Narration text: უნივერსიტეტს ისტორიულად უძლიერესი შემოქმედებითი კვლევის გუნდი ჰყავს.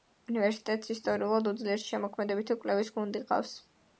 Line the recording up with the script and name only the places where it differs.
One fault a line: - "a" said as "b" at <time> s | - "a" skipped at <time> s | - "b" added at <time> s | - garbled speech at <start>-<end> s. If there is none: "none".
none